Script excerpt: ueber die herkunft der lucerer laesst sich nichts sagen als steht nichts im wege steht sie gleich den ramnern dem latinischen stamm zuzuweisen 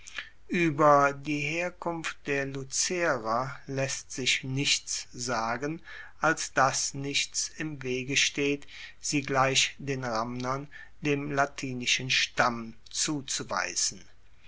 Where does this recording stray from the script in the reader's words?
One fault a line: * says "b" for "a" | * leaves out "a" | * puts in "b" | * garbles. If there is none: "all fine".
* says "dass" for "steht"